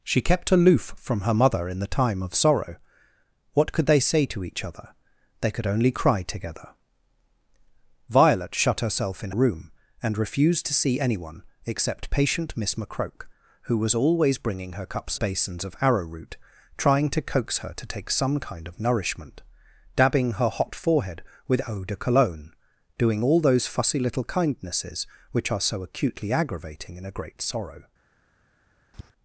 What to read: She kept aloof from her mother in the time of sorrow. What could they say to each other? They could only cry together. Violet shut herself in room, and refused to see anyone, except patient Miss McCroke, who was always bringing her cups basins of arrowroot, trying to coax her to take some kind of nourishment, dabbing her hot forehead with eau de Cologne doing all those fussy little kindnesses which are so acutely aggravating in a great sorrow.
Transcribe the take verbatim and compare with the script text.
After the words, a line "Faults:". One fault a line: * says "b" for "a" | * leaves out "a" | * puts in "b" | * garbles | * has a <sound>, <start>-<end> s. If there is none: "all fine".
She kept aloof from her mother in the time of sorrow. What could they say to each other? They could only cry together. Violet shut herself in room, and refused to see anyone, except patient Miss McCroke, who was always bringing her cups basins of arrowroot, trying to coax her to take some kind of nourishment, dabbing her hot forehead with eau de Cologne doing all those fussy little kindnesses which are so acutely aggravating in a great sorrow.
Faults:
* has a tap, 28.9-29.1 s